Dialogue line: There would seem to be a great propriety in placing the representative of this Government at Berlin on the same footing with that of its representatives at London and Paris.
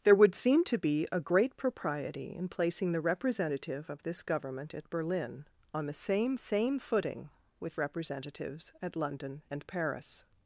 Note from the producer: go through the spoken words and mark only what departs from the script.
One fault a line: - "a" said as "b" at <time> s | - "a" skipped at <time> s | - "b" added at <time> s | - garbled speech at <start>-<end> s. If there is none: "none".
- "same" added at 6.4 s
- "that of its" skipped at 7.8 s